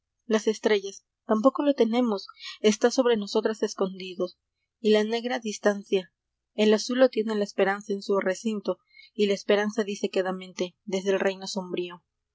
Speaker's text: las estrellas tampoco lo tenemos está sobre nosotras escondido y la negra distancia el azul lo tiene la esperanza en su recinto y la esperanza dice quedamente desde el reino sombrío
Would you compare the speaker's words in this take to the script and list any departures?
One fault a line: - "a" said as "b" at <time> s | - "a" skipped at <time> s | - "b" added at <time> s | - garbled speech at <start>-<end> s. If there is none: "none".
none